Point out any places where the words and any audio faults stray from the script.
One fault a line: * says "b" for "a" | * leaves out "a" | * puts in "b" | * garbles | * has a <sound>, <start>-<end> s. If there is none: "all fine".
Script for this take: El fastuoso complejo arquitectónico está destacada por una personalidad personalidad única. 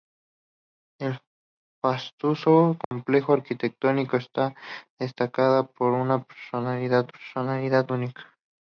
* has a dropout, 2.8-2.9 s